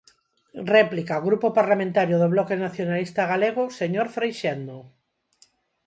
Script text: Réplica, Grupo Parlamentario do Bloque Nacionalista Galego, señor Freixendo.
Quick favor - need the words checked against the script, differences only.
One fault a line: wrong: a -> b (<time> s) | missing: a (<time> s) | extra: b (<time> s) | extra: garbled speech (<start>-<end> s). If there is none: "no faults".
no faults